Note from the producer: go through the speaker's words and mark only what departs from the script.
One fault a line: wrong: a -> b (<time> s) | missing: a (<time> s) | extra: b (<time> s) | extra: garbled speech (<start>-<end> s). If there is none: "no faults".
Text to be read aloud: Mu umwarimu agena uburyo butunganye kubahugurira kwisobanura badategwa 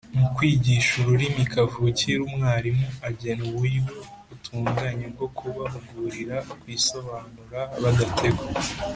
extra: kwigisha ururimi kavukire (0.3 s)
extra: bwo (5.1 s)